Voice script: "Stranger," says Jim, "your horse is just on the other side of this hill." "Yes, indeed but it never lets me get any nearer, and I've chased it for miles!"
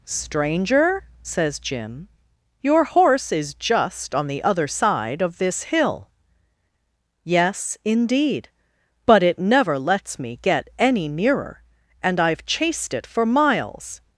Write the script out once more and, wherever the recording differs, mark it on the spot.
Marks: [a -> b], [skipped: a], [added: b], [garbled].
"Stranger," says Jim, "your horse is just on the other side of this hill." "Yes, indeed but it never lets me get any nearer, and I've chased it for miles!"